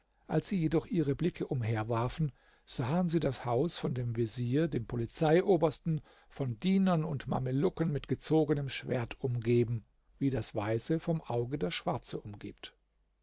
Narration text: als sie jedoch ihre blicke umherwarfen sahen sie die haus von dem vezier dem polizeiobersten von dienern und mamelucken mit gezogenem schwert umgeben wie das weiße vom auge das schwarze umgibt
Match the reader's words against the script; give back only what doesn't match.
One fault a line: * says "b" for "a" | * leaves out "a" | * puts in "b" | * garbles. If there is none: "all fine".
* says "das" for "die"